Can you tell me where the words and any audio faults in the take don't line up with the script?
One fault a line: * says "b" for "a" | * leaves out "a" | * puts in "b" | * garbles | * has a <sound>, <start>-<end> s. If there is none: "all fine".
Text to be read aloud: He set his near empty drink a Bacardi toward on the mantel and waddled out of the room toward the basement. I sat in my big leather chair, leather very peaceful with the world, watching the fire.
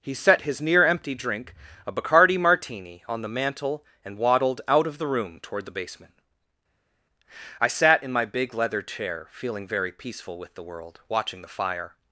* says "martini" for "toward"
* says "feeling" for "leather"